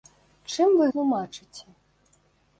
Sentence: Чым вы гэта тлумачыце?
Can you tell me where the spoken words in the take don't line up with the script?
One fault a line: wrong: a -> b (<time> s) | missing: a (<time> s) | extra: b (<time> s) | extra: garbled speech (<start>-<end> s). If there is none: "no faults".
missing: гэта (0.9 s)